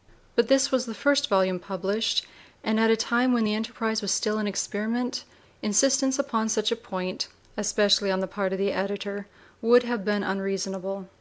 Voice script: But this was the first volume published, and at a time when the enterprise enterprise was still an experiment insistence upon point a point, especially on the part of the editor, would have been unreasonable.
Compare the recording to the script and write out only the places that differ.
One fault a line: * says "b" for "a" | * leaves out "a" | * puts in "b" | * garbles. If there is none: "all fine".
* leaves out "enterprise"
* says "such" for "point"